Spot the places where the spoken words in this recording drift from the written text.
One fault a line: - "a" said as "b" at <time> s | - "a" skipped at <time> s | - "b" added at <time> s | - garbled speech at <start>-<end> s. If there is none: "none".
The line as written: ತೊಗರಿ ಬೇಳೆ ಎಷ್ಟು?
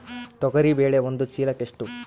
- "ಒಂದು ಚೀಲಕ" added at 1.0 s